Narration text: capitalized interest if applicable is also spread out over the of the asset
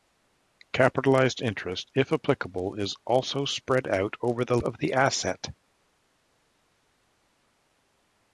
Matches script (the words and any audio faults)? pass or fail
pass